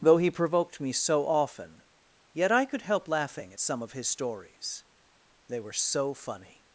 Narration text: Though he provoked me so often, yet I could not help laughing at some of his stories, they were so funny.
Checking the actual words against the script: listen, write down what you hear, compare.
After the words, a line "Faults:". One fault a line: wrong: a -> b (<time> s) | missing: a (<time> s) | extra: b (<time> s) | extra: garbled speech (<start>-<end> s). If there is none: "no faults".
Though he provoked me so often, yet I could help laughing at some of his stories, they were so funny.
Faults:
missing: not (2.8 s)